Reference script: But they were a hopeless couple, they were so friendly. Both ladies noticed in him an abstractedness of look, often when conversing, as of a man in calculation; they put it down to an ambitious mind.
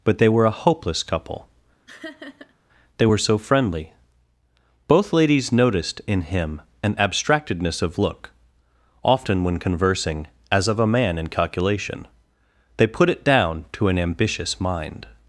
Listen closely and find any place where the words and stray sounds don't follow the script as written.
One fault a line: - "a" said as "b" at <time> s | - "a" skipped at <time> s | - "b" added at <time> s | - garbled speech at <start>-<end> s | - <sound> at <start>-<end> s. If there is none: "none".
- laugh at 1.9-2.5 s